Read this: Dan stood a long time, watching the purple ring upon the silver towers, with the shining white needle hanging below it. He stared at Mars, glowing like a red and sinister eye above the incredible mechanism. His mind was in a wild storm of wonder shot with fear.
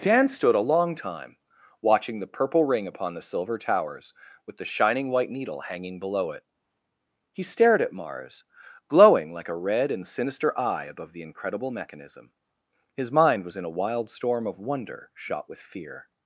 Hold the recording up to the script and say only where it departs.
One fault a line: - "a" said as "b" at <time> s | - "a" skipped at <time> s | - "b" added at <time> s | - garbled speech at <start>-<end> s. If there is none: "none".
none